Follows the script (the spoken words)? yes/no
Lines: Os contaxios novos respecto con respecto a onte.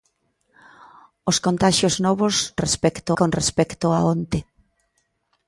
yes